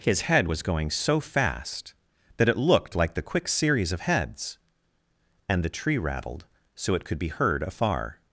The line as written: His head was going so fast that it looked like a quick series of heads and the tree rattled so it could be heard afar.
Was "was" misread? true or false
false